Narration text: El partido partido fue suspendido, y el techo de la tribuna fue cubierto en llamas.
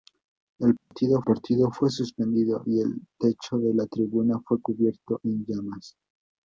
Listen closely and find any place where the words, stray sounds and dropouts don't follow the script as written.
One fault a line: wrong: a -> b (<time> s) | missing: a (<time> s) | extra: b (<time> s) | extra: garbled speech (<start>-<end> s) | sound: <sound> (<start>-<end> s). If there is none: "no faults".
sound: dropout (0.8-0.9 s)